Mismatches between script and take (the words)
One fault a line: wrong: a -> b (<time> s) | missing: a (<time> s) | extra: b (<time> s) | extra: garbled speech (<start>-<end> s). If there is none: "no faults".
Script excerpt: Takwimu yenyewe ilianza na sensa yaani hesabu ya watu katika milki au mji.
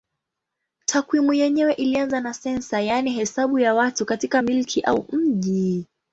no faults